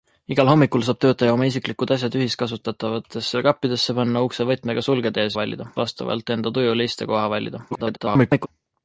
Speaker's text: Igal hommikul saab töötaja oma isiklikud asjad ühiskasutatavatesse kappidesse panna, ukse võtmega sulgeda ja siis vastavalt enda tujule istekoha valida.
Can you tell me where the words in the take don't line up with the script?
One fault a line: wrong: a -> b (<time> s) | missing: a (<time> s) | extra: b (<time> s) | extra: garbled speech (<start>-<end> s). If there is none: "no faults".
wrong: siis -> valida (5.4 s)
extra: garbled speech (7.7-8.5 s)